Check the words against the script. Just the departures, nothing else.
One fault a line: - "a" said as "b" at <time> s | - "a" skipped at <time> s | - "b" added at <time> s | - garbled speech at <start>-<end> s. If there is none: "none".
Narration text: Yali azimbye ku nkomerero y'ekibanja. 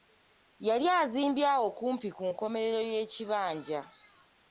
- "awo kumpi" added at 1.6 s